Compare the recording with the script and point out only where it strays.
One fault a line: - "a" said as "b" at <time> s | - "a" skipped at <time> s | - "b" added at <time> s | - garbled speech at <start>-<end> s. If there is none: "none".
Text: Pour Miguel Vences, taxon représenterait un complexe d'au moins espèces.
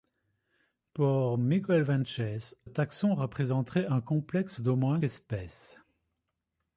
none